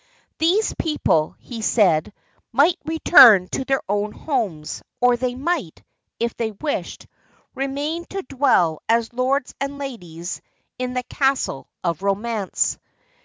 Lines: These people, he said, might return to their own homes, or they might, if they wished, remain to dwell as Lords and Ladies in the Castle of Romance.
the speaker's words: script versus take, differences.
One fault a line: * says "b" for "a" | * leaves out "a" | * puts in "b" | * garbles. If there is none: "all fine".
all fine